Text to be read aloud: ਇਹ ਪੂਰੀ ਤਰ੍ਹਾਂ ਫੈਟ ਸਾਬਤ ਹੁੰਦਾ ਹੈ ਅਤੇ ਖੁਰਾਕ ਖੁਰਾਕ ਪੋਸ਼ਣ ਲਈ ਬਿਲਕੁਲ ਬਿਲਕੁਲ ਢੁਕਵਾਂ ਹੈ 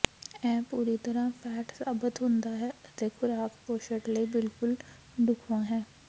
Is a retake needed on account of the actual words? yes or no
yes